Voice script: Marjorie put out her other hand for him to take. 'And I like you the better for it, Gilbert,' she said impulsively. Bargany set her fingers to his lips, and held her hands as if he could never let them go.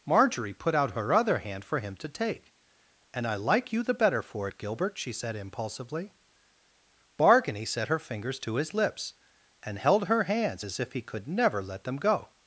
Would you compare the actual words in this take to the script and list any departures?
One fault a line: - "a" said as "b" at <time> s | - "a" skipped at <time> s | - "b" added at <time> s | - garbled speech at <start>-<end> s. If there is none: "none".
none